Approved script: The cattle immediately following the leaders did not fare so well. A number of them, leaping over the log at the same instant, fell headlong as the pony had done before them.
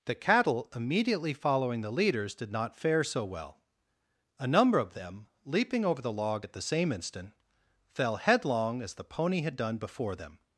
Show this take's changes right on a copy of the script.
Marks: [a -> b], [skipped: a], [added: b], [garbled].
The cattle immediately following the leaders did not fare so well. A number of them, leaping over the log at the same instant, fell headlong as the pony had done before them.